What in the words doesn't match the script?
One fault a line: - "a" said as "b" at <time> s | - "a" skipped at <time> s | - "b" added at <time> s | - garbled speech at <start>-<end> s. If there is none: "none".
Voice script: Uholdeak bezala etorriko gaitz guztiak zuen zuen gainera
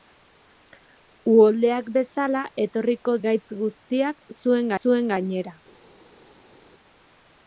none